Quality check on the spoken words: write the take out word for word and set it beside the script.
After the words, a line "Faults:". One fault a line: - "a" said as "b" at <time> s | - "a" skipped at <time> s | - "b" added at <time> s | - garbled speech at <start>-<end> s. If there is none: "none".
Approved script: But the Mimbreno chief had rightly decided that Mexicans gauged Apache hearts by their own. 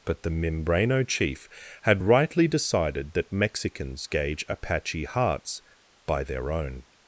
But the Mimbreno chief had rightly decided that Mexicans gauge Apache hearts by their own.
Faults:
- "gauged" said as "gauge" at 4.1 s